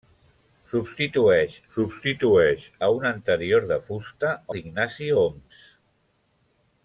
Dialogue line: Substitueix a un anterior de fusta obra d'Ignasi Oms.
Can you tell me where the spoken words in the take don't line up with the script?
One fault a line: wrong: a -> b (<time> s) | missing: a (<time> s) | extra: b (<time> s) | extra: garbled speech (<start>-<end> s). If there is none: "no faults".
extra: substitueix (1.7 s)
missing: obra (4.3 s)